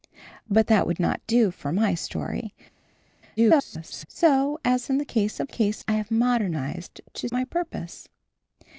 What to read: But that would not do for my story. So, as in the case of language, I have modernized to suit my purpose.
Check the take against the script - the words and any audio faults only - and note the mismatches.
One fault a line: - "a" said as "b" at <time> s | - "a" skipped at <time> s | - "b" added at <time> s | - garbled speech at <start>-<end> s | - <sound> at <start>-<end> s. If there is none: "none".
- garbled speech at 3.4-4.1 s
- "language" said as "case" at 5.5 s
- "suit" skipped at 7.3 s